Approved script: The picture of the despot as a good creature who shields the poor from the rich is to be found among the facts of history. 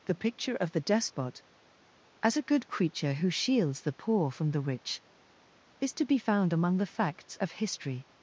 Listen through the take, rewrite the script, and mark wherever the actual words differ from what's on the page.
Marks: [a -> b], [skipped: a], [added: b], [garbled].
The picture of the despot as a good creature who shields the poor from the rich is to be found among the facts of history.